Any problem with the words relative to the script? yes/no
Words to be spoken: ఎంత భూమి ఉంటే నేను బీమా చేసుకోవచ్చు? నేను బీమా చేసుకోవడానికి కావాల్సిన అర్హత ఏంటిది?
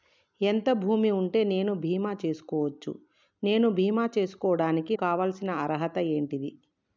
no